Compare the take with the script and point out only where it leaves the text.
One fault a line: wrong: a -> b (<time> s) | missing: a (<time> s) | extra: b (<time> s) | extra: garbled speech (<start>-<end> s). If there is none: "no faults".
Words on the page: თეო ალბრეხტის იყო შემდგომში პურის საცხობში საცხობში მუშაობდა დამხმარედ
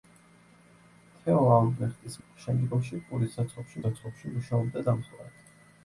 no faults